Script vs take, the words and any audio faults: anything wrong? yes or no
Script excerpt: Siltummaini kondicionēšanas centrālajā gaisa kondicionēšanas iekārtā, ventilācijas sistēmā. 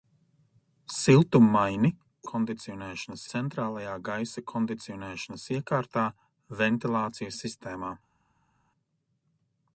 no